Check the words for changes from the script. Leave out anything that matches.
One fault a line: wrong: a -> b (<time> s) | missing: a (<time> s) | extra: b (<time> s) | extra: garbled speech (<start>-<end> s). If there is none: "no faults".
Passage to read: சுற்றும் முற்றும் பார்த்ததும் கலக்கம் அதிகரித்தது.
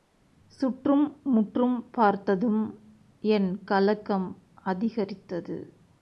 extra: என் (3.2 s)